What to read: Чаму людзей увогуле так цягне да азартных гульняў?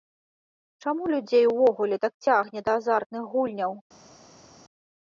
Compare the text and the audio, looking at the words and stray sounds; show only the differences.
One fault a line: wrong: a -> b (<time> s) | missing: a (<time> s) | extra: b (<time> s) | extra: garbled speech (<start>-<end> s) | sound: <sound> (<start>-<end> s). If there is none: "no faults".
no faults